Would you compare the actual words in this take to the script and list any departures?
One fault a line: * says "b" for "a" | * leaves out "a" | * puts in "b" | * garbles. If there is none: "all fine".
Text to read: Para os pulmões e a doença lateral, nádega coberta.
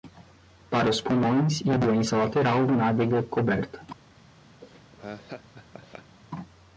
all fine